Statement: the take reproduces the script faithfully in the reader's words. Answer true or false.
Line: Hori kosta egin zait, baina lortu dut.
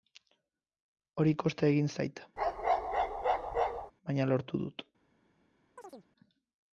true